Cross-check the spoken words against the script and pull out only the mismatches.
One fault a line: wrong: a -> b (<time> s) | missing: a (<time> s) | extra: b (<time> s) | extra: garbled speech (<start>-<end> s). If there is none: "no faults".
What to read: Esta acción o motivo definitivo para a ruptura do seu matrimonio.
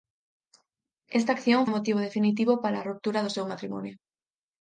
no faults